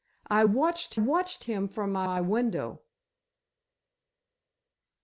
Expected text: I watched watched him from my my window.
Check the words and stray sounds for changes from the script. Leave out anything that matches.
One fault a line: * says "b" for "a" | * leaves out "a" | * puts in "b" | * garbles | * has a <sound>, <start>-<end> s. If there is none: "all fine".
all fine